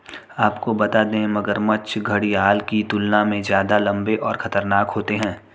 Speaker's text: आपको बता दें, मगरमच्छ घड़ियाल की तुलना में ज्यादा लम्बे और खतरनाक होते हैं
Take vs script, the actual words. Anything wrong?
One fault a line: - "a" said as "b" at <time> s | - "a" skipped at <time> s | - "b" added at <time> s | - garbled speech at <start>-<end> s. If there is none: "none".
none